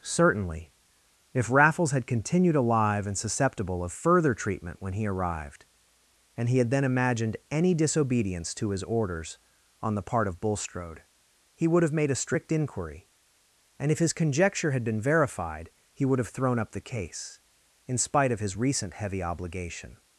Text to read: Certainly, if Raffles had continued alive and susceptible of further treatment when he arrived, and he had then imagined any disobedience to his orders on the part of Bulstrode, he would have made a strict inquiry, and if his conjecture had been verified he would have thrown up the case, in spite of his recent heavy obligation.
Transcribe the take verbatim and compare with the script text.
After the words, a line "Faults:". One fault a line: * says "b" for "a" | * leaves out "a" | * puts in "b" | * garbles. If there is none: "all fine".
Certainly, if Raffles had continued alive and susceptible of further treatment when he arrived, and he had then imagined any disobedience to his orders on the part of Bulstrode, he would have made a strict inquiry, and if his conjecture had been verified he would have thrown up the case, in spite of his recent heavy obligation.
Faults:
all fine